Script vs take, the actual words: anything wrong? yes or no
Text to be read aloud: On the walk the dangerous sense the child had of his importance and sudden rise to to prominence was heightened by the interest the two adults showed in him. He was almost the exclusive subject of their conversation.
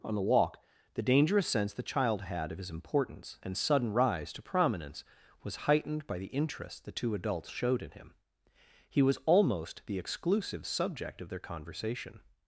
yes